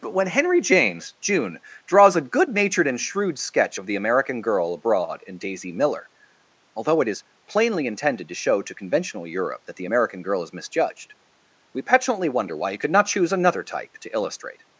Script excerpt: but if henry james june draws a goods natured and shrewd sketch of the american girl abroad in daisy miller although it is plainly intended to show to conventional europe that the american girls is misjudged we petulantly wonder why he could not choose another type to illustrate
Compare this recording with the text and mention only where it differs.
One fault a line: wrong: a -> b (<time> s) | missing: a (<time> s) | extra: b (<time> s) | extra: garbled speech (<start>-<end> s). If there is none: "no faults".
wrong: if -> when (0.1 s)
wrong: goods -> good (2.2 s)
wrong: girls -> girl (10.2 s)